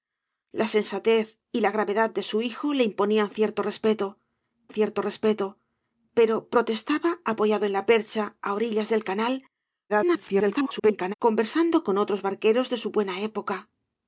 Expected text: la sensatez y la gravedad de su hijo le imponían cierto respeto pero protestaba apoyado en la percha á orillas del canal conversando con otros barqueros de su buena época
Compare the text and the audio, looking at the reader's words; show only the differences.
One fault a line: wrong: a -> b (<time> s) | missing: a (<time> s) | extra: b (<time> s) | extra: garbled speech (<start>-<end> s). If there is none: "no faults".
extra: cierto respeto (4.7 s)
extra: garbled speech (9.9-11.1 s)